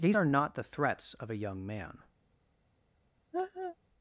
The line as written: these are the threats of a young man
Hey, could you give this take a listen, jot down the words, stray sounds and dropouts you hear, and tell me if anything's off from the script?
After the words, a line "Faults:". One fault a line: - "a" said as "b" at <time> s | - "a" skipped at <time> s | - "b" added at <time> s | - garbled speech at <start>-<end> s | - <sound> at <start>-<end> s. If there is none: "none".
these are not the threats of a young man
Faults:
- "not" added at 0.3 s
- laugh at 3.3-3.8 s